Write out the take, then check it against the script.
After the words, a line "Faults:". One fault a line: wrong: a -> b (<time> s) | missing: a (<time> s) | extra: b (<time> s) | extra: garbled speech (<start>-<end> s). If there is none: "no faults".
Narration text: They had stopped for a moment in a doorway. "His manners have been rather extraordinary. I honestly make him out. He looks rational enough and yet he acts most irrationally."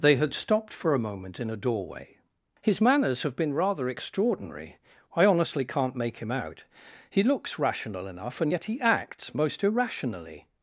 They had stopped for a moment in a doorway. "His manners have been rather extraordinary. I honestly can't make him out. He looks rational enough and yet he acts most irrationally."
Faults:
extra: can't (5.6 s)